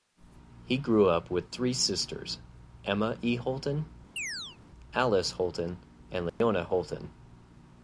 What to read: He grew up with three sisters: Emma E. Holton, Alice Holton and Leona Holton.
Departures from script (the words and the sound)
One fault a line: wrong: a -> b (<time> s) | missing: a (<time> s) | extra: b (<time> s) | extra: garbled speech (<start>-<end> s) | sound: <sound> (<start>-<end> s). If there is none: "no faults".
sound: chirp (4.2-4.6 s)
sound: dropout (6.3-6.4 s)